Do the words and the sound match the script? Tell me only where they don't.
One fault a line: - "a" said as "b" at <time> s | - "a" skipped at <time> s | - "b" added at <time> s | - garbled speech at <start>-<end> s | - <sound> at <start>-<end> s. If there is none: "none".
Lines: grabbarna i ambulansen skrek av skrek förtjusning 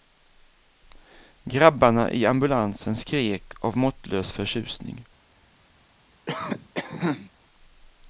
- "skrek" said as "måttlös" at 3.8 s
- cough at 6.3-7.3 s